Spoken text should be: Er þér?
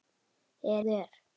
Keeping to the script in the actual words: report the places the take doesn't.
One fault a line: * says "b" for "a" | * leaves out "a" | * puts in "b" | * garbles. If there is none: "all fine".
all fine